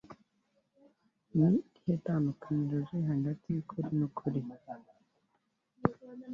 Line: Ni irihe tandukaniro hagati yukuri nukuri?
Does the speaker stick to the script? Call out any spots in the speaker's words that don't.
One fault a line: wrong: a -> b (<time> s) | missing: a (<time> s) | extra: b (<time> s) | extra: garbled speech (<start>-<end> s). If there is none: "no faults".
extra: riri (2.9 s)